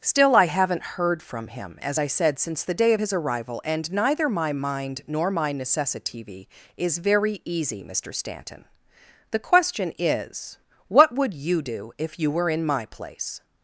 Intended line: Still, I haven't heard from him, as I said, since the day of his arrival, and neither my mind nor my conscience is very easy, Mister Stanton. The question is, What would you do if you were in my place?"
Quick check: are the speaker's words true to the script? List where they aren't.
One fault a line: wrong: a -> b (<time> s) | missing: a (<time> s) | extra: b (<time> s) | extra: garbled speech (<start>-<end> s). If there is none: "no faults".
wrong: conscience -> necessitv (5.5 s)